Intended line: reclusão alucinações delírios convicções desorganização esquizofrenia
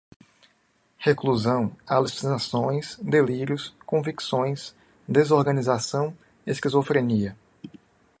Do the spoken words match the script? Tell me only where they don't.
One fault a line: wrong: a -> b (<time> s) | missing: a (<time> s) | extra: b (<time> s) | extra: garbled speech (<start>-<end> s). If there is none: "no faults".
no faults